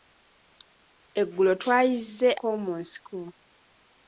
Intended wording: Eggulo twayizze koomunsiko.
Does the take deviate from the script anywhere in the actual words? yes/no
no